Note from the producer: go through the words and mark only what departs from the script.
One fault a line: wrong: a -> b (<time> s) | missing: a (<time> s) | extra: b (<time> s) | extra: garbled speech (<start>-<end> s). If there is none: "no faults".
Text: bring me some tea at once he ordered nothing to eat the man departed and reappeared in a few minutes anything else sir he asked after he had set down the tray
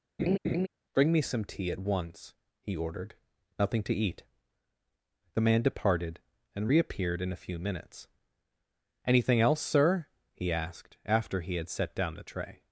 no faults